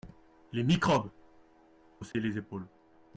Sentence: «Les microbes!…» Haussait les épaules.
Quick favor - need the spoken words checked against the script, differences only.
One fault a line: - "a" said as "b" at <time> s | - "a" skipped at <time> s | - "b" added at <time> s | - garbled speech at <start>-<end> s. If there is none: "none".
none